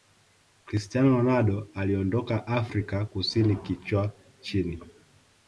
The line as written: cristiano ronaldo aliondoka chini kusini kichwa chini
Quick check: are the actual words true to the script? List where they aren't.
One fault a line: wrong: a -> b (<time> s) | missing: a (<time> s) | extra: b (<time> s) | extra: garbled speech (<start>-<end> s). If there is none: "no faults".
wrong: chini -> afrika (2.5 s)